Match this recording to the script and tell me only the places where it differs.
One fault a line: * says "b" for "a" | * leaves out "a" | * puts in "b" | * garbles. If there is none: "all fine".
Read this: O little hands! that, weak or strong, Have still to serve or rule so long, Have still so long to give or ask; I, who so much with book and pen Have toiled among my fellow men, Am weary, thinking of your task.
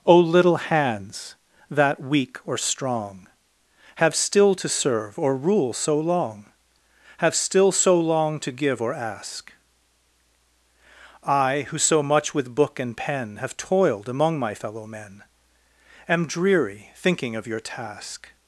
* says "dreary" for "weary"